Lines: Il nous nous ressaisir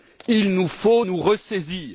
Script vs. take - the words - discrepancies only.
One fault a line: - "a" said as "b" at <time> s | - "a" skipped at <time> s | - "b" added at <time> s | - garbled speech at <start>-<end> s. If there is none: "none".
- "faut" added at 0.7 s